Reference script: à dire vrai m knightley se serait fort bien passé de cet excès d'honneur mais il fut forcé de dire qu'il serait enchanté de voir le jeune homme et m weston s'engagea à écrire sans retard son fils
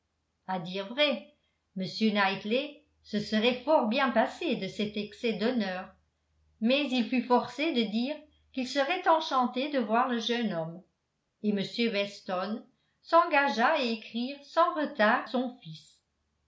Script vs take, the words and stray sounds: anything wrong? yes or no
no